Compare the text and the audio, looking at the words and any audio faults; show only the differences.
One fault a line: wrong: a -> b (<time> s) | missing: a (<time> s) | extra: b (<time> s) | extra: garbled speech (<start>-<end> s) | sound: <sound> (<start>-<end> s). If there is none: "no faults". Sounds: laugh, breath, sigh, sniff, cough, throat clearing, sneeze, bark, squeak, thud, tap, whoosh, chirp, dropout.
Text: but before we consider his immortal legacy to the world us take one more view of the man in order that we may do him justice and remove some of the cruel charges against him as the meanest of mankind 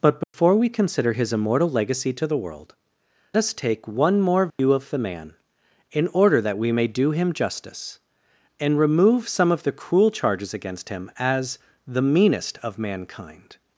sound: dropout (0.2-0.3 s)
sound: dropout (4.5-4.6 s)